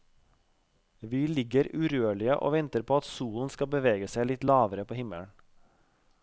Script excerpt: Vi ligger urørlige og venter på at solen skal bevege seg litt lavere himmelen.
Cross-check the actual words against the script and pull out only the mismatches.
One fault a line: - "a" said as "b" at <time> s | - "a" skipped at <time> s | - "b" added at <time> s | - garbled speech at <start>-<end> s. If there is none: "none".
- "på" added at 4.9 s